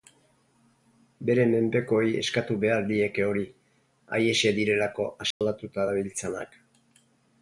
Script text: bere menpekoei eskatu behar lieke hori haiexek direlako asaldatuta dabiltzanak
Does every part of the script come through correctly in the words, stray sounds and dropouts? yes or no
no